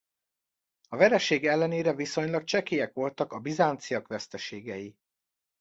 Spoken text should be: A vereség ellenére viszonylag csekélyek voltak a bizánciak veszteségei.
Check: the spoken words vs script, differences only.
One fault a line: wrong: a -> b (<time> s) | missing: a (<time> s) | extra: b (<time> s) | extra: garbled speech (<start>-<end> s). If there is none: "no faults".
no faults